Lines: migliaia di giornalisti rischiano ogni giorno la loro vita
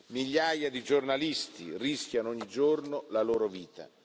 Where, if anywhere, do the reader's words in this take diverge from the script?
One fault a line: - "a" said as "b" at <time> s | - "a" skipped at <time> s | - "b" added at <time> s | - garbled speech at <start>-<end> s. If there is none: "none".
none